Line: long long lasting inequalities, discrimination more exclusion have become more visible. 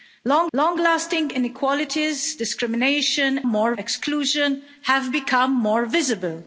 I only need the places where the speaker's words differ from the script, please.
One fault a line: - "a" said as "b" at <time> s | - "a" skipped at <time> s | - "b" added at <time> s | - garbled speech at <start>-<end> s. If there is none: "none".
none